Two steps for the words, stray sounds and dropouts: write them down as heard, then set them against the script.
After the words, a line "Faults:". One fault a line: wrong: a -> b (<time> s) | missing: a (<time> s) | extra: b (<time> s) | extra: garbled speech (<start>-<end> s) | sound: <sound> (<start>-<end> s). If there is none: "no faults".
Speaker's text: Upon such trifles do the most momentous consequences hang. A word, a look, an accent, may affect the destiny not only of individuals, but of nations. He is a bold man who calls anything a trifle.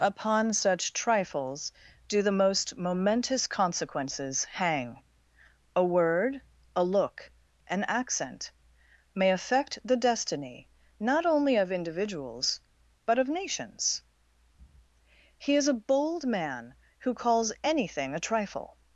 Upon such trifles do the most momentous consequences hang. A word, a look, an accent, may affect the destiny not only of individuals, but of nations. He is a bold man who calls anything a trifle.
Faults:
no faults